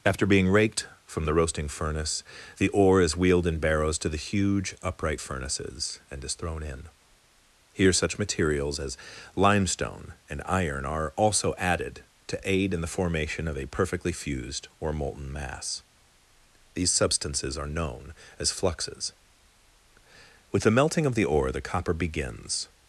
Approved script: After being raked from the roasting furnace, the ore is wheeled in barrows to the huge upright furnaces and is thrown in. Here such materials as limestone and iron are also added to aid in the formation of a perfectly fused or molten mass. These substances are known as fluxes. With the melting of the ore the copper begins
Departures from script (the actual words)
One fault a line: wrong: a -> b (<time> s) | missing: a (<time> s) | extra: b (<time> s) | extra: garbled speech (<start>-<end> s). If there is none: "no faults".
no faults